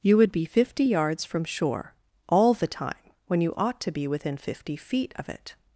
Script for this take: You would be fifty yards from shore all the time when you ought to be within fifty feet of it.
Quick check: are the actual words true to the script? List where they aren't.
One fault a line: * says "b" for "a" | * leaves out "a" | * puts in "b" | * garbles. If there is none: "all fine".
all fine